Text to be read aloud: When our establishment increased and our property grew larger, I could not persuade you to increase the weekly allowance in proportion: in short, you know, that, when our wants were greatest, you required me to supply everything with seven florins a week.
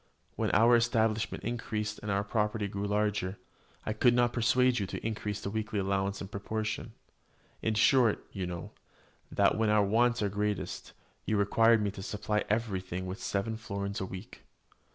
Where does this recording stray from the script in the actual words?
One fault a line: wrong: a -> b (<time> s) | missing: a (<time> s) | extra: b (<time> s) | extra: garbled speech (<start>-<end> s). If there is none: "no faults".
no faults